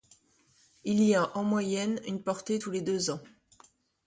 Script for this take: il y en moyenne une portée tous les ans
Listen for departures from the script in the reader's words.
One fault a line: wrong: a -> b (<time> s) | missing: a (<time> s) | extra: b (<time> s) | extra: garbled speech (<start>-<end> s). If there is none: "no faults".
extra: a (1.1 s)
extra: deux (2.8 s)